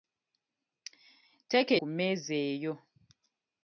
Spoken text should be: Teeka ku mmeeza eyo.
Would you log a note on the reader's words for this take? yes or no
no